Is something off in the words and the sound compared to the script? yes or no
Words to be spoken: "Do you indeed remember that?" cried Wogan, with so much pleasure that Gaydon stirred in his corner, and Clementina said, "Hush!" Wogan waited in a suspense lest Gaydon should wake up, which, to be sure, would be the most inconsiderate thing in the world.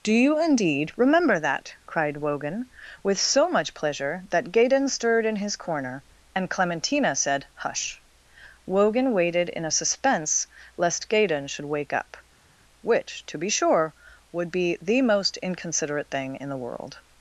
no